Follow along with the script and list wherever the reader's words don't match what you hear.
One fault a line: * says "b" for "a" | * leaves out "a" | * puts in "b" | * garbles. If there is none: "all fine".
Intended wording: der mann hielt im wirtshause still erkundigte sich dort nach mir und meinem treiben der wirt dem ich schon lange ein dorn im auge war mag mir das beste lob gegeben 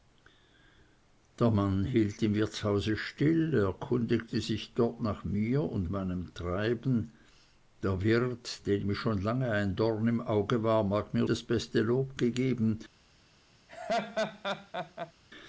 all fine